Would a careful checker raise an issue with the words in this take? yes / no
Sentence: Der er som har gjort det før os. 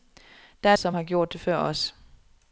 no